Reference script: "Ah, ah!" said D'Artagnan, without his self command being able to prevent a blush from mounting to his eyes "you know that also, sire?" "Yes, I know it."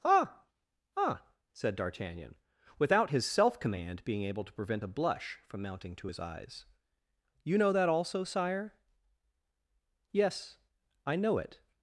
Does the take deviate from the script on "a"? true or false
false